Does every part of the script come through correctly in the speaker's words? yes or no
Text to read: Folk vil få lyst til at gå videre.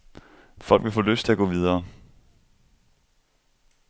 yes